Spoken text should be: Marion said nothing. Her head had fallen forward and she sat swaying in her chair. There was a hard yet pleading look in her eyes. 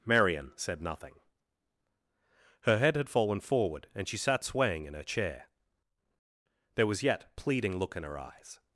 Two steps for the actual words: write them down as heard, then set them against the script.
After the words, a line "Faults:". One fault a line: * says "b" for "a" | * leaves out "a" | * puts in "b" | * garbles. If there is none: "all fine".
Marion said nothing. Her head had fallen forward and she sat swaying in her chair. There was yet pleading look in her eyes.
Faults:
* leaves out "a hard"